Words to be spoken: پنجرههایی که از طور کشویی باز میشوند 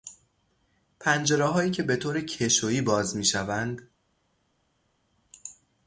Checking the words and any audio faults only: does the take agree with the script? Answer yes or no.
no